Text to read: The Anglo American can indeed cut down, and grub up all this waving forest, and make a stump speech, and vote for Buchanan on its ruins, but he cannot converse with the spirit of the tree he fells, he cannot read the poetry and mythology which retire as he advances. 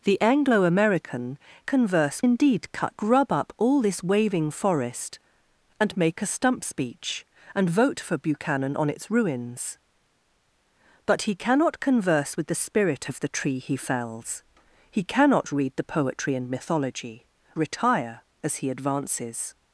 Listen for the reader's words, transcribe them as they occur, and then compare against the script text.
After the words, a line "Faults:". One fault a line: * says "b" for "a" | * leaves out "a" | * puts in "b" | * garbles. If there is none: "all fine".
The Anglo American converse indeed cut grub up all this waving forest, and make a stump speech, and vote for Buchanan on its ruins, but he cannot converse with the spirit of the tree he fells, he cannot read the poetry and mythology retire as he advances.
Faults:
* says "converse" for "can"
* leaves out "down and"
* leaves out "which"